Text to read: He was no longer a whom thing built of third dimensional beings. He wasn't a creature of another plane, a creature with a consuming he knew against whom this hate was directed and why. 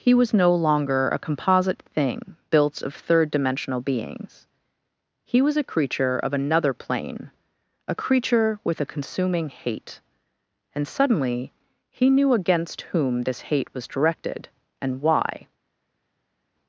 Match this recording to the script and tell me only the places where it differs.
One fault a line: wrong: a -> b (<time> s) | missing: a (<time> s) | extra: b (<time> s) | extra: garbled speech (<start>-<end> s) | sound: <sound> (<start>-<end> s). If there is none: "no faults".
wrong: whom -> composite (1.2 s)
wrong: wasn't -> was (5.4 s)
extra: hate and suddenly (9.5 s)